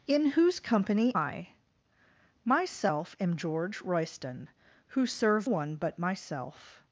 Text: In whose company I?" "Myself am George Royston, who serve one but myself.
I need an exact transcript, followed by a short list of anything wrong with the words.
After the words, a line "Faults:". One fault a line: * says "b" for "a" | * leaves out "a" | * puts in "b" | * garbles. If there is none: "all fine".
In whose company I?" "Myself am George Royston, who serve one but myself.
Faults:
all fine